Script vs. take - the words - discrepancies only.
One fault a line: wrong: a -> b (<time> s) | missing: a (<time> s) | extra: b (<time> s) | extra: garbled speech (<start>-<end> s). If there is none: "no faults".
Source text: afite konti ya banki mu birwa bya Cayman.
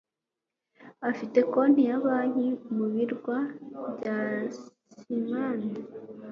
no faults